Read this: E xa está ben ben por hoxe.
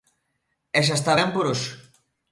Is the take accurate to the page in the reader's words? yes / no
no